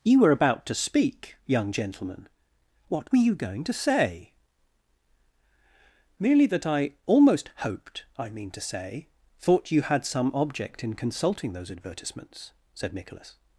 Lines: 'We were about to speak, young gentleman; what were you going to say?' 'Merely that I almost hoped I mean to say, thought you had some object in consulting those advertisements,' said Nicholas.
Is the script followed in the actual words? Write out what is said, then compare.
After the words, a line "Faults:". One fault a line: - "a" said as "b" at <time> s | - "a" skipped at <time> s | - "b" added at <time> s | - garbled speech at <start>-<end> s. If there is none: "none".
'You were about to speak, young gentleman; what were you going to say?' 'Merely that I almost hoped I mean to say, thought you had some object in consulting those advertisements,' said Nicholas.
Faults:
- "We" said as "You" at 0.0 s